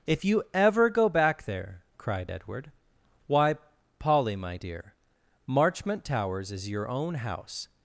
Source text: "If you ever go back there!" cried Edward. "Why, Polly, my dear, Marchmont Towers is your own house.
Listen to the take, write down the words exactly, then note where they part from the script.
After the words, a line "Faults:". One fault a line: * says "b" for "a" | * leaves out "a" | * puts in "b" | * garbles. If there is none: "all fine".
"If you ever go back there!" cried Edward. "Why, Polly, my dear, Marchmont Towers is your own house.
Faults:
all fine